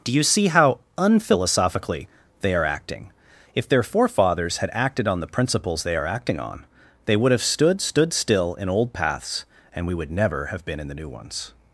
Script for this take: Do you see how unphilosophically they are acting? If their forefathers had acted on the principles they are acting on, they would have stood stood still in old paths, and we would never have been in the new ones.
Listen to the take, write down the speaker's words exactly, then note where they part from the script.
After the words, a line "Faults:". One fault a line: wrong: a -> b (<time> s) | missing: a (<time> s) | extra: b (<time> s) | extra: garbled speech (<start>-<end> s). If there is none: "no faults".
Do you see how unphilosophically they are acting? If their forefathers had acted on the principles they are acting on, they would have stood stood still in old paths, and we would never have been in the new ones.
Faults:
no faults